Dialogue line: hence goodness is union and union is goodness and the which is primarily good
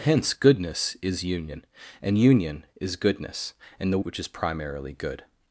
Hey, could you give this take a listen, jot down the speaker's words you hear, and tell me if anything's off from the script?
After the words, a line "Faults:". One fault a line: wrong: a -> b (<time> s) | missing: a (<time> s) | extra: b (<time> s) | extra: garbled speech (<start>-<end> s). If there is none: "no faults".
hence goodness is union and union is goodness and the which is primarily good
Faults:
no faults